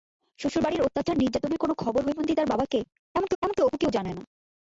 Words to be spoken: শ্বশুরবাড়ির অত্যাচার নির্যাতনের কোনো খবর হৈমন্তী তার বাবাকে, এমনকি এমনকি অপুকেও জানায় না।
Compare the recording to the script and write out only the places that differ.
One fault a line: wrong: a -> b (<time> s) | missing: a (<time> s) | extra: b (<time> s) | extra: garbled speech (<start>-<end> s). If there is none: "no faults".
no faults